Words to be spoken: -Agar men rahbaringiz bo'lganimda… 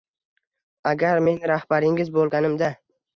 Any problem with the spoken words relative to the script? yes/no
no